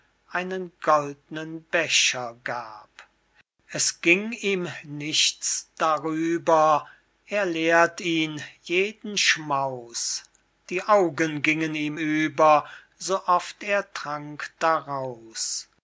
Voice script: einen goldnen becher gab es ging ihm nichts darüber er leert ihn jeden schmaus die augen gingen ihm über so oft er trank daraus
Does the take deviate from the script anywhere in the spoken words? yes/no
no